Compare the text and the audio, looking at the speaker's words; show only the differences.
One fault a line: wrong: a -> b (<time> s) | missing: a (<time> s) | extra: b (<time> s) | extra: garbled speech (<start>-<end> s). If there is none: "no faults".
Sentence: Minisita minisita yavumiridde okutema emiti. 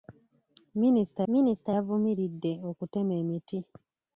no faults